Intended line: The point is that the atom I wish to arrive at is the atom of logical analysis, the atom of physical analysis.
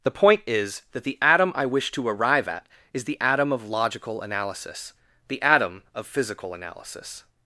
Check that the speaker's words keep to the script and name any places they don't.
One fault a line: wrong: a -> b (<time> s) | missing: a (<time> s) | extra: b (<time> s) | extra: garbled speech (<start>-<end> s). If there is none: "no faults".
no faults